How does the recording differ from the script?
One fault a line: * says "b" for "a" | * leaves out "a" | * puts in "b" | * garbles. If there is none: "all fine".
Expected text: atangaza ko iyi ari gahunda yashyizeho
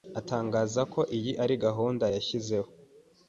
all fine